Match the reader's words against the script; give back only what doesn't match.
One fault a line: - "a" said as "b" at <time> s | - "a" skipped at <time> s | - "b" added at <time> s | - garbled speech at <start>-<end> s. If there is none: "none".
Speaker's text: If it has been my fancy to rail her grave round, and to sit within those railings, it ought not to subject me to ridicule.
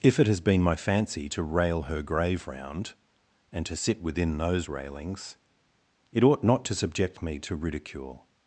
none